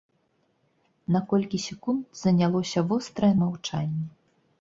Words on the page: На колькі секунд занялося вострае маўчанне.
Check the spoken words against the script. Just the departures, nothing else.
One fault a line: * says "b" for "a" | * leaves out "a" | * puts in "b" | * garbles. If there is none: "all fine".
all fine